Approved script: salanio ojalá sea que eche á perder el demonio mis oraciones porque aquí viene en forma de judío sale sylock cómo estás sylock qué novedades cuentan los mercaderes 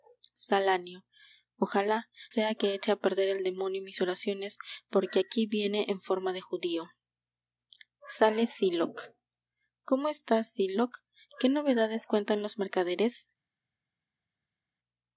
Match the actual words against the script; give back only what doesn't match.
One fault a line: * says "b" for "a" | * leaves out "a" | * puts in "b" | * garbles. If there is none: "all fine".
all fine